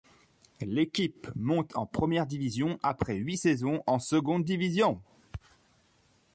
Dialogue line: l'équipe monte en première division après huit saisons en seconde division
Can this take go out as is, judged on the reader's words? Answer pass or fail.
pass